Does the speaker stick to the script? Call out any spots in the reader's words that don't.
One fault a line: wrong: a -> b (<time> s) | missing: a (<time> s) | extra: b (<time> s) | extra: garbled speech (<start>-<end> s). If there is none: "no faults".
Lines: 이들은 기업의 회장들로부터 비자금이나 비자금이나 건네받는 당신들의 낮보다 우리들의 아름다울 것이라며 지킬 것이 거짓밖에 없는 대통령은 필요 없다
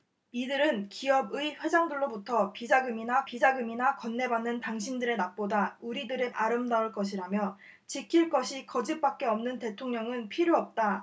no faults